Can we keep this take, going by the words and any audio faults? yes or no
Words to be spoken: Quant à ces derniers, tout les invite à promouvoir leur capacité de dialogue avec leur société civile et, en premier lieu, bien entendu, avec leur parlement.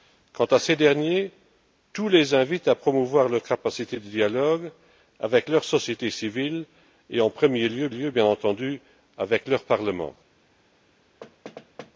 no